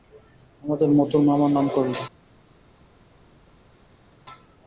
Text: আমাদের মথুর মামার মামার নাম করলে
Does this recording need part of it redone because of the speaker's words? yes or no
yes